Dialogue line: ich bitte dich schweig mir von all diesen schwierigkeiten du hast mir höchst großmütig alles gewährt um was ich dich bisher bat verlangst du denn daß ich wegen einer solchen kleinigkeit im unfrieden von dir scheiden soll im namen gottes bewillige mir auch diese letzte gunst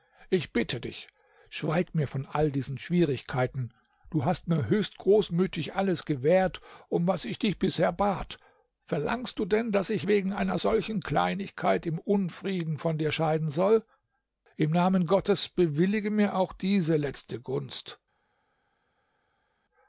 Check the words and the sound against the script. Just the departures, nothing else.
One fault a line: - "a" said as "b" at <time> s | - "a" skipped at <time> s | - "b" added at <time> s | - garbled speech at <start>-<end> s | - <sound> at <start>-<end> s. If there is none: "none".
none